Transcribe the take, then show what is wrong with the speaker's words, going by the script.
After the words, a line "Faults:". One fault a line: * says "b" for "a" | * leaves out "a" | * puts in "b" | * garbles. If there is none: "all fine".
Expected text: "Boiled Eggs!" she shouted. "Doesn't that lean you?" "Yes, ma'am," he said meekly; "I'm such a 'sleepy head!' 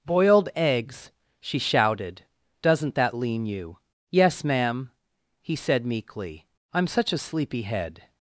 "Boiled Eggs!" she shouted. "Doesn't that lean you?" "Yes, ma'am," he said meekly; "I'm such a 'sleepy head!'
Faults:
all fine